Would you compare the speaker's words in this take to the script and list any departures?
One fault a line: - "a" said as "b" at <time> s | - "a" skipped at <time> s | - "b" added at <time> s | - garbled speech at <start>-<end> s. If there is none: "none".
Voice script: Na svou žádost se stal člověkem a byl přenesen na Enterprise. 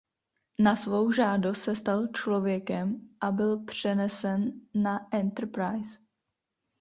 none